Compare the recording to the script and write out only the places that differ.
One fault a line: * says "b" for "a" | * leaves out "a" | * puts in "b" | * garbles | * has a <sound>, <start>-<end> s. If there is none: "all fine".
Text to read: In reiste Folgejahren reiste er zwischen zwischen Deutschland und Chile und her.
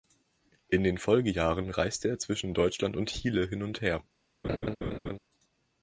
* says "den" for "reiste"
* leaves out "zwischen"
* puts in "hin"
* has a laugh, 4.4-5.2 s